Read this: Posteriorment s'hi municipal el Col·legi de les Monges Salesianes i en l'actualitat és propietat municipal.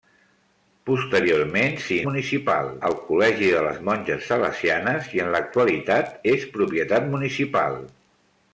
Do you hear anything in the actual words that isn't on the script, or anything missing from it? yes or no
no